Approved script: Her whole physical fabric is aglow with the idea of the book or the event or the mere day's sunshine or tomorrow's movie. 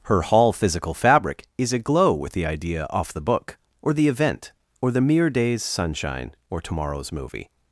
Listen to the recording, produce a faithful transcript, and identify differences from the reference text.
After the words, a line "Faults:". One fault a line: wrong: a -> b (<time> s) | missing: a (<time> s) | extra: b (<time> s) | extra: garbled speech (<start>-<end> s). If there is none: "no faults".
Her hall physical fabric is aglow with the idea off the book or the event or the mere day's sunshine or tomorrow's movie.
Faults:
wrong: whole -> hall (0.2 s)
wrong: of -> off (2.9 s)